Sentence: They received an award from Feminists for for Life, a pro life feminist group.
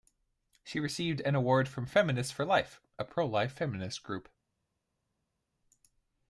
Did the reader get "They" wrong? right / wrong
wrong